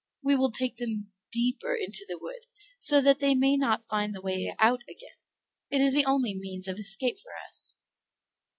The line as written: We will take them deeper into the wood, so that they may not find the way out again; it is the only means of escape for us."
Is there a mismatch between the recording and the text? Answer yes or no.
no